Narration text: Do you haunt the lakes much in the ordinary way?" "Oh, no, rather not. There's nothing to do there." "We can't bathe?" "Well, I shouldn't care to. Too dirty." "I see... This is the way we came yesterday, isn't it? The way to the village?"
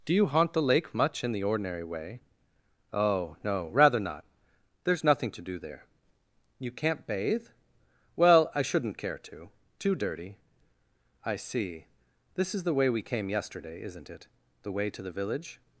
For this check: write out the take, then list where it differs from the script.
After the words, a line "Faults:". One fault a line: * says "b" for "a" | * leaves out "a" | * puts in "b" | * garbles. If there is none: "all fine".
Do you haunt the lake much in the ordinary way?" "Oh, no, rather not. There's nothing to do there." "You can't bathe?" "Well, I shouldn't care to. Too dirty." "I see... This is the way we came yesterday, isn't it? The way to the village?"
Faults:
* says "lake" for "lakes"
* says "You" for "We"